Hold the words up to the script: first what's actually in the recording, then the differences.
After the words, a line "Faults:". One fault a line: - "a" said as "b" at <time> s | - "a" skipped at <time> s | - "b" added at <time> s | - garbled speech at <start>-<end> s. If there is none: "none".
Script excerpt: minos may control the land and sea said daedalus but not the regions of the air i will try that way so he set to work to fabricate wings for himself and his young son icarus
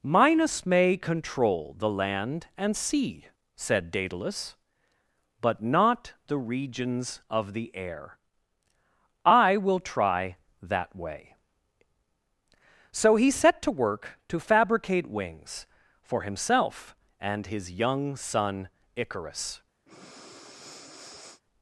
minos may control the land and sea said daedalus but not the regions of the air i will try that way so he set to work to fabricate wings for himself and his young son icarus
Faults:
none